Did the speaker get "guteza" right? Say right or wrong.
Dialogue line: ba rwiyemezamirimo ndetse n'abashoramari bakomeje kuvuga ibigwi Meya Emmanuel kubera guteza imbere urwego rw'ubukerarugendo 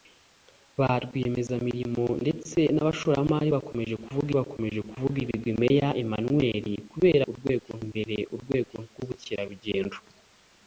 wrong